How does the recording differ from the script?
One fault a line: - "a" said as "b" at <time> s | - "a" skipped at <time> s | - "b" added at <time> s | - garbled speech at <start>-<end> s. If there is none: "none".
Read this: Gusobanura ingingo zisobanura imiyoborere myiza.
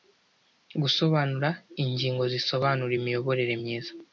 none